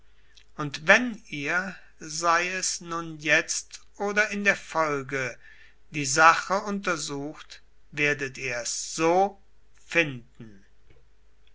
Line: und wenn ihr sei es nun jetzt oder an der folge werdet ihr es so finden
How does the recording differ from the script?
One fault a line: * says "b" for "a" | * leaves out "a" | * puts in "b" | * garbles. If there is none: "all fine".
* says "in" for "an"
* puts in "die sache untersucht"